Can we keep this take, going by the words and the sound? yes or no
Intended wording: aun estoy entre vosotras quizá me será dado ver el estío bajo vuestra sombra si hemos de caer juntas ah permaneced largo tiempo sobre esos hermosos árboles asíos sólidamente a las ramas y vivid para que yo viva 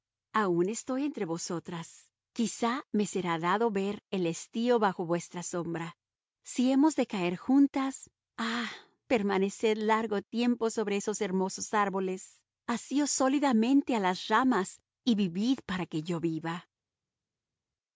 yes